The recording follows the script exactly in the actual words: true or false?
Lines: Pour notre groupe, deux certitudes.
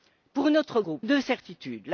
true